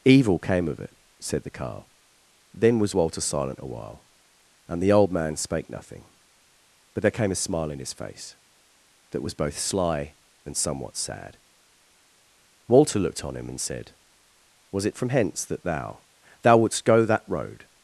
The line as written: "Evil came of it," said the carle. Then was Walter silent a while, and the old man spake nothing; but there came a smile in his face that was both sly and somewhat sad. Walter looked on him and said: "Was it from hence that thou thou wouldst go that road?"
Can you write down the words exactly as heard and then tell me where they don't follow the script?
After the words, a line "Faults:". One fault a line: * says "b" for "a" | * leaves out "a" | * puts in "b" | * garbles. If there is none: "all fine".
"Evil came of it," said the carle. Then was Walter silent a while, and the old man spake nothing; but there came a smile in his face that was both sly and somewhat sad. Walter looked on him and said: "Was it from hence that thou thou wouldst go that road?"
Faults:
all fine